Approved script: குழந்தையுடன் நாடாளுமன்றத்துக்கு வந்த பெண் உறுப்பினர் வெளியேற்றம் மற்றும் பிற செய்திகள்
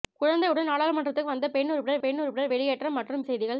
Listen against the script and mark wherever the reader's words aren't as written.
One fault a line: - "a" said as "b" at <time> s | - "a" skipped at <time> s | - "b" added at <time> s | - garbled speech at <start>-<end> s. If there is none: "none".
- "பெண் உறுப்பினர்" added at 2.0 s
- "பிற" skipped at 3.2 s